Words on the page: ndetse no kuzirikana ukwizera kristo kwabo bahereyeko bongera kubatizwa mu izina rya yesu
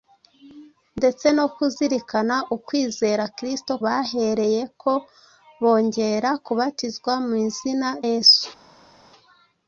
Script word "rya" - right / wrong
wrong